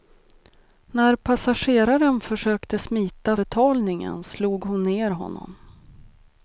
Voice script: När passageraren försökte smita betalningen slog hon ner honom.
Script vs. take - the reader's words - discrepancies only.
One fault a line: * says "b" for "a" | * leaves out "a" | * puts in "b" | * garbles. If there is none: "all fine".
all fine